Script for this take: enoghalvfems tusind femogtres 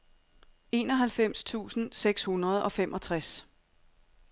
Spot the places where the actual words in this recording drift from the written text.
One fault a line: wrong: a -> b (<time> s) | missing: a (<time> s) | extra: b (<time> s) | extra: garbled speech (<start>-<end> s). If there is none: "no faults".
extra: seks hundrede og (1.9 s)